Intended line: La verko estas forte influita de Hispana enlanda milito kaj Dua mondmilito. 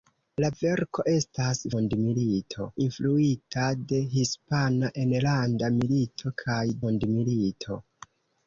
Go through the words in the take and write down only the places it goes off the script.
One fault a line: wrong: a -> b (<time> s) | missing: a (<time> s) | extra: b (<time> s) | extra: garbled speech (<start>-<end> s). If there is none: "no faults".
wrong: forte -> mondmilito (1.7 s)
missing: Dua (6.6 s)